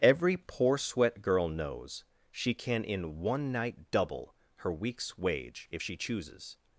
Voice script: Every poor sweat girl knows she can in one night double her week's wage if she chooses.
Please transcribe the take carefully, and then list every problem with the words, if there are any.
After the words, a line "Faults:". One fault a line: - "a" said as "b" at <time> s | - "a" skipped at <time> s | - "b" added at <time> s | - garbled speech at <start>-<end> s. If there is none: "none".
Every poor sweat girl knows she can in one night double her week's wage if she chooses.
Faults:
none